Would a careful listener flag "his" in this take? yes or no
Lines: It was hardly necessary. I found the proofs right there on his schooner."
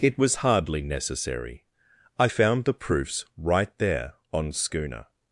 yes